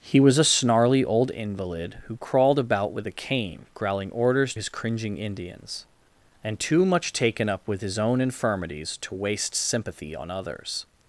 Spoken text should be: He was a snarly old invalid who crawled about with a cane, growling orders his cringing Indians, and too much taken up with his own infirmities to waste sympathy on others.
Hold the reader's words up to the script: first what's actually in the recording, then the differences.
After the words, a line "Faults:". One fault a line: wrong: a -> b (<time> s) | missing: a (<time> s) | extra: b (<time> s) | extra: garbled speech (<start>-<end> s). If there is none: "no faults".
He was a snarly old invalid who crawled about with a cane, growling orders his cringing Indians, and too much taken up with his own infirmities to waste sympathy on others.
Faults:
no faults